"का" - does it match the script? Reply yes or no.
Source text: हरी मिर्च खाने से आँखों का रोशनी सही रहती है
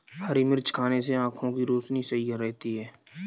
no